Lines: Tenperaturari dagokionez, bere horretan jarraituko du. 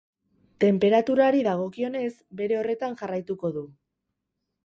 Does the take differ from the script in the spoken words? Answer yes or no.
no